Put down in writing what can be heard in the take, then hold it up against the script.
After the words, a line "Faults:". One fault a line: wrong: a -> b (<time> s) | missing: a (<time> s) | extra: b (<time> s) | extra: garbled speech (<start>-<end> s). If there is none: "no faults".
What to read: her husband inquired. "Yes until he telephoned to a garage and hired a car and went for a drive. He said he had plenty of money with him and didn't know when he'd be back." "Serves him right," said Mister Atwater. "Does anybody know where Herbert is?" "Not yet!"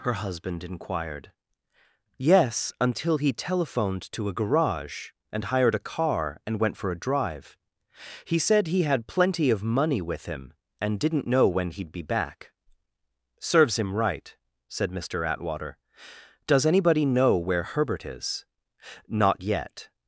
her husband inquired. "Yes until he telephoned to a garage and hired a car and went for a drive. He said he had plenty of money with him and didn't know when he'd be back." "Serves him right," said Mister Atwater. "Does anybody know where Herbert is?" "Not yet!"
Faults:
no faults